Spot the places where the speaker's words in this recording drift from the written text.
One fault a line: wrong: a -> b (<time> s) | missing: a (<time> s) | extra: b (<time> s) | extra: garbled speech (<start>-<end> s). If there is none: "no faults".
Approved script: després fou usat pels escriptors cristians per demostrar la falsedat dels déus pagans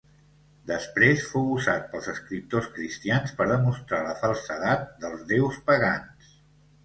no faults